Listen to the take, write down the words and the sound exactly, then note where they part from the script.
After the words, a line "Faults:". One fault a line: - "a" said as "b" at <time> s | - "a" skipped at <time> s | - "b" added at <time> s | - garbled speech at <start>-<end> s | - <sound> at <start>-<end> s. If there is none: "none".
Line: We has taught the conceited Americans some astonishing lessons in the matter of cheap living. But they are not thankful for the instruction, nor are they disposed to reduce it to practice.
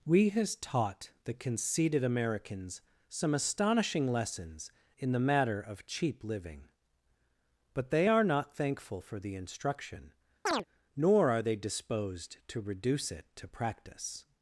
We has taught the conceited Americans some astonishing lessons in the matter of cheap living. But they are not thankful for the instruction, nor are they disposed to reduce it to practice.
Faults:
- chirp at 10.5-10.6 s